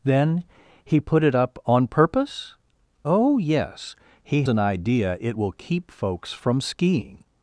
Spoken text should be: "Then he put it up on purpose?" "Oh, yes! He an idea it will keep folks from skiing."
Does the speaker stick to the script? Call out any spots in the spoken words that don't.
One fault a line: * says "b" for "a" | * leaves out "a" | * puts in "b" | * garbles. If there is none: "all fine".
all fine